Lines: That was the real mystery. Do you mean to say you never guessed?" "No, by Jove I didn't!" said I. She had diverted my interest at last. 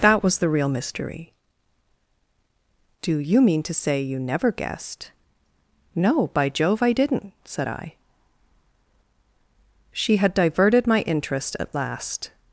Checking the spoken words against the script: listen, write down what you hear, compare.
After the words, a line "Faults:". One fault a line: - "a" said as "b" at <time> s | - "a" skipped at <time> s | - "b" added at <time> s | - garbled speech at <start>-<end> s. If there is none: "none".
That was the real mystery. Do you mean to say you never guessed?" "No, by Jove I didn't!" said I. She had diverted my interest at last.
Faults:
none